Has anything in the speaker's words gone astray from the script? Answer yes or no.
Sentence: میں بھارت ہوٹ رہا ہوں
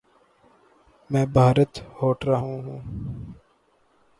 no